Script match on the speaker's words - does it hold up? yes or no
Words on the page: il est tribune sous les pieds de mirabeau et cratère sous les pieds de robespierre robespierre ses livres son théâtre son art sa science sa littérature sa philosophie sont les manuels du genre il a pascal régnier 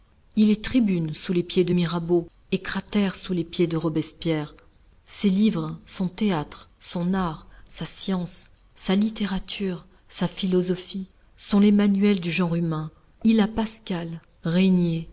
no